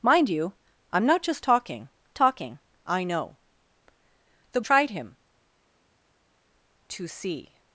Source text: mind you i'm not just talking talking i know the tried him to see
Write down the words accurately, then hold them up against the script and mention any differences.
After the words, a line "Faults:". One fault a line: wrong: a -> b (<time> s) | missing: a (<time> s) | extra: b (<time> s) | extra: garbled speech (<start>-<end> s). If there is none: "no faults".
mind you i'm not just talking talking i know the tried him to see
Faults:
no faults